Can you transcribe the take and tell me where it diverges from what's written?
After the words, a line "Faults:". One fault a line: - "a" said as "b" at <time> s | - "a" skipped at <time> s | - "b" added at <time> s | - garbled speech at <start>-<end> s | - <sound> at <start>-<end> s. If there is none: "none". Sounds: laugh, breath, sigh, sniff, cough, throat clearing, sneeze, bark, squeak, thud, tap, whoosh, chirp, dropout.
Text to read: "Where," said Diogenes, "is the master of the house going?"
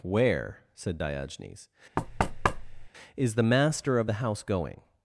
"Where," said Diogenes, "is the master of the house going?"
Faults:
- thud at 2.0-2.9 s